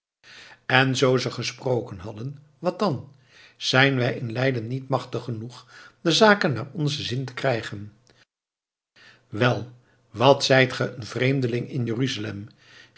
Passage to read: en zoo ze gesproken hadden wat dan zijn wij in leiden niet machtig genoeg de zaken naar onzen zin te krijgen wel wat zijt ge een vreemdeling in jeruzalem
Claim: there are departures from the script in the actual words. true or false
false